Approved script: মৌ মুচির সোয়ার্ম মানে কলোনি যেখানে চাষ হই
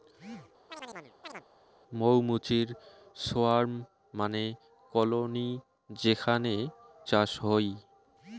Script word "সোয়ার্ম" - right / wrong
right